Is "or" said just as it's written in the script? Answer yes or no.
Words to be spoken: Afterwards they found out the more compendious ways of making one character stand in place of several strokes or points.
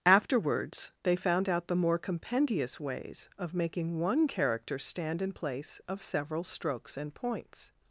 no